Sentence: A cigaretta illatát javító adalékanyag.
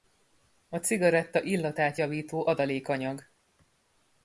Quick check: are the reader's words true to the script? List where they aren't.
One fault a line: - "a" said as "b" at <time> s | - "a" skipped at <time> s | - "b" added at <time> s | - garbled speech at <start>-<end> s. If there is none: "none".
none